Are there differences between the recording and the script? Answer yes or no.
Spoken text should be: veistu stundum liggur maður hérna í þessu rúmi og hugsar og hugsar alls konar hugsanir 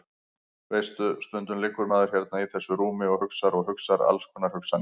no